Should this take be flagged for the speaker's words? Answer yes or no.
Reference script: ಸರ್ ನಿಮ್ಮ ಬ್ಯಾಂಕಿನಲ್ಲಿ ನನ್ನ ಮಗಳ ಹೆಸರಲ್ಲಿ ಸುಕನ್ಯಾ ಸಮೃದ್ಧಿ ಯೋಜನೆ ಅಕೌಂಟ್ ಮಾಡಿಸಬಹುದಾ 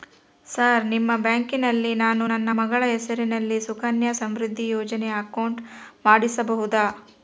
yes